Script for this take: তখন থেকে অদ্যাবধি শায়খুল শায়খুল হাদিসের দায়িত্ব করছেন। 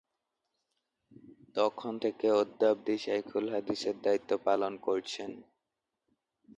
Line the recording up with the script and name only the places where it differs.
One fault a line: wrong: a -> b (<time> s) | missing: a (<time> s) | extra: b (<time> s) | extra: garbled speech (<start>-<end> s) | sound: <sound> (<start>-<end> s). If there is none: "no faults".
missing: শায়খুল (3.5 s)
extra: পালন (4.5 s)